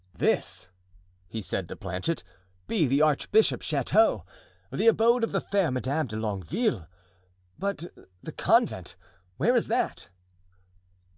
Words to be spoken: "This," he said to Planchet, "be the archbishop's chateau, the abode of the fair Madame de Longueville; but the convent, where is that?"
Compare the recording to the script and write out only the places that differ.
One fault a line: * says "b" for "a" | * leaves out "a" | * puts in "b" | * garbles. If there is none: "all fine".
all fine